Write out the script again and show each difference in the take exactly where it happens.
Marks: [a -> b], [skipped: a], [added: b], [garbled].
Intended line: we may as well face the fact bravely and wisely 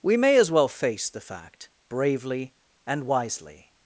we may as well face the fact bravely and wisely